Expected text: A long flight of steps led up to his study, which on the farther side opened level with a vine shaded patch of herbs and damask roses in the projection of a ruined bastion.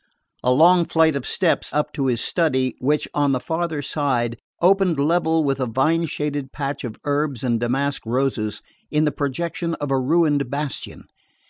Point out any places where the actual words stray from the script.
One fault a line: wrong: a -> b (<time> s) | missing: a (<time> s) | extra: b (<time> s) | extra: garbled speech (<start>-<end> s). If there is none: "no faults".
missing: led (1.8 s)